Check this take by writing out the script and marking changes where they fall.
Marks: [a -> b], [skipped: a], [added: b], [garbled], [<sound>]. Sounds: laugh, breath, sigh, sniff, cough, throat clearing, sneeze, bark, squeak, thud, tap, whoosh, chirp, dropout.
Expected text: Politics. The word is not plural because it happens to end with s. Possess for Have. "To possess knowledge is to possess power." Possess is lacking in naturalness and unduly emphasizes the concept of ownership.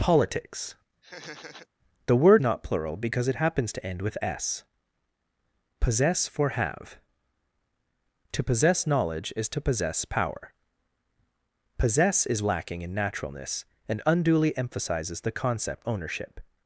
Politics. [laugh] The word [skipped: is] not plural because it happens to end with s. Possess for Have. "To possess knowledge is to possess power." Possess is lacking in naturalness and unduly emphasizes the concept [skipped: of] ownership.